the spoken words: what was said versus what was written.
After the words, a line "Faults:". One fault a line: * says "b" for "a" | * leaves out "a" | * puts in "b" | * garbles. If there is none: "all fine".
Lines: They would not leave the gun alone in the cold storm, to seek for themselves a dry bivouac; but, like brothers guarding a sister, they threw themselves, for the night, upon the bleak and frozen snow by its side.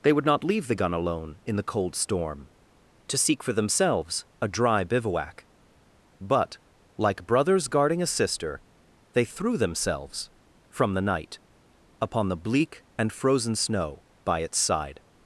They would not leave the gun alone in the cold storm, to seek for themselves a dry bivouac; but, like brothers guarding a sister, they threw themselves, from the night, upon the bleak and frozen snow by its side.
Faults:
* says "from" for "for"